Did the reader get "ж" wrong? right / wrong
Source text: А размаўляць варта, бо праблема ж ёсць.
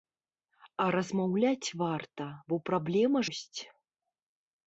wrong